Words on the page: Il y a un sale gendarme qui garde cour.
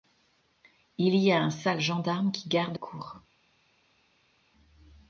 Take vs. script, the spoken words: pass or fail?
pass